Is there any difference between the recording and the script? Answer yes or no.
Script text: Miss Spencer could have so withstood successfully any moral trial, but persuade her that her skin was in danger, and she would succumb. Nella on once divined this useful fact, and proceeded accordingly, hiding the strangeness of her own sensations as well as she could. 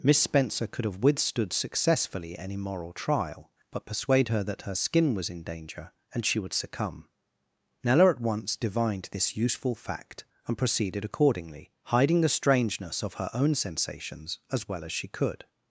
yes